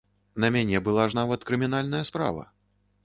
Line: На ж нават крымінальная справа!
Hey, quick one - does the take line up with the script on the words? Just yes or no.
no